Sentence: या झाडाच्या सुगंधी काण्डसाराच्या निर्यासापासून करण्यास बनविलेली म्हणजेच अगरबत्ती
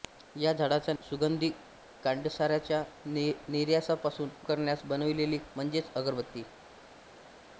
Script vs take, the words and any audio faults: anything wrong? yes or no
no